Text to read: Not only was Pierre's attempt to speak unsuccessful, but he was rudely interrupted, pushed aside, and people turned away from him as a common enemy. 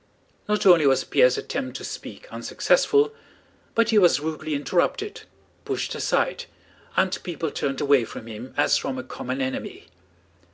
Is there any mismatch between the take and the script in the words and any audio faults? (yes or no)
yes